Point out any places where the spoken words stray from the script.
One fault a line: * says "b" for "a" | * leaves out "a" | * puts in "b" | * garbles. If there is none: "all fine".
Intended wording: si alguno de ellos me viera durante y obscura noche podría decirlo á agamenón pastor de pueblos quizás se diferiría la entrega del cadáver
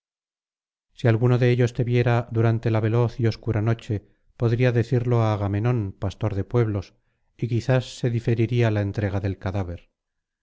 * says "te" for "me"
* puts in "la veloz"
* puts in "y"